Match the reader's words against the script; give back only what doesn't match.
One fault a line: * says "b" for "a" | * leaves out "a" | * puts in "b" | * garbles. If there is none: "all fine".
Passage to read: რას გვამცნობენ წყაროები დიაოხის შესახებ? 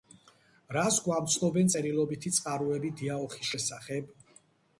* puts in "წერილობითი"